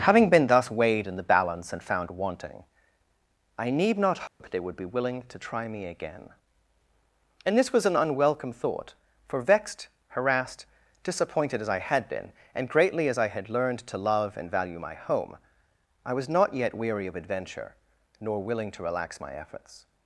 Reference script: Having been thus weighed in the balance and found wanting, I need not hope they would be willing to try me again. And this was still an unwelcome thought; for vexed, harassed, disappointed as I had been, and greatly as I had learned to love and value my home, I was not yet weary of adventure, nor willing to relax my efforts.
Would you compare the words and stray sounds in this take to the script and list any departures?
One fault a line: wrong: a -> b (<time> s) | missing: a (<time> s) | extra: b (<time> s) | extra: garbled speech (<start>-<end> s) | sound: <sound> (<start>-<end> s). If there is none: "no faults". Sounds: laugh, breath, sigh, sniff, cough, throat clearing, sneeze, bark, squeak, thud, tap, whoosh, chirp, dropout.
sound: dropout (4.3-4.4 s)
missing: still (7.8 s)